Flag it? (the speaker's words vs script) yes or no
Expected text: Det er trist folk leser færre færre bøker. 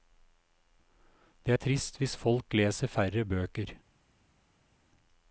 yes